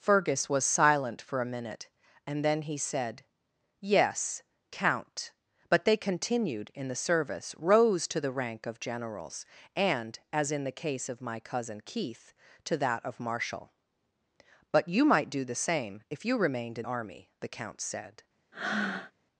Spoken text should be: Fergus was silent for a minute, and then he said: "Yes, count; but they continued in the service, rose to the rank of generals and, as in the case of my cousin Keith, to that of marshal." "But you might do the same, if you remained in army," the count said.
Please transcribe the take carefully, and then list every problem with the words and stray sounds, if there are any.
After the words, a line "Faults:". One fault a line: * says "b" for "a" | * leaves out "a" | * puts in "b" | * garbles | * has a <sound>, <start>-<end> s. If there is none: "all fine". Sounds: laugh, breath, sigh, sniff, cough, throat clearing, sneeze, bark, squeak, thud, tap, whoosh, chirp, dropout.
Fergus was silent for a minute, and then he said: "Yes, count; but they continued in the service, rose to the rank of generals and, as in the case of my cousin Keith, to that of marshal." "But you might do the same, if you remained in army," the count said.
Faults:
* has a breath, 18.5-19.1 s